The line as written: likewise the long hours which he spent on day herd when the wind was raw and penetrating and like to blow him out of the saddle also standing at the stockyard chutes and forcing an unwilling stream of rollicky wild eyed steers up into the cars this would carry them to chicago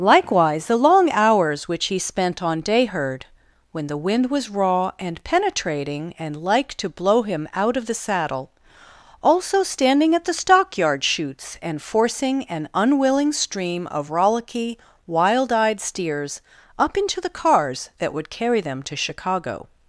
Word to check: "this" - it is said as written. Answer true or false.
false